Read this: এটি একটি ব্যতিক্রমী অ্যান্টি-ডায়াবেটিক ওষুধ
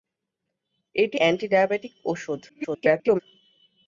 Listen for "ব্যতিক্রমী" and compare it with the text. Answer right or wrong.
wrong